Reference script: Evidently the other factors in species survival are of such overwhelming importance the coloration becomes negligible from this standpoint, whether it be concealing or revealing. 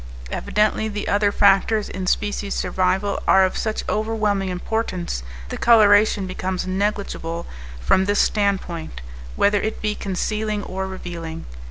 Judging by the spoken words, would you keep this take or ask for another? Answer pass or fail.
pass